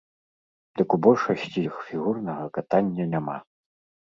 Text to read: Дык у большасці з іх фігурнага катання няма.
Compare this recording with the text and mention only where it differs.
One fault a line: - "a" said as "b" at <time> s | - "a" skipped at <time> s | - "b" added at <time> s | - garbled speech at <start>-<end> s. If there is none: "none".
- "з" skipped at 1.6 s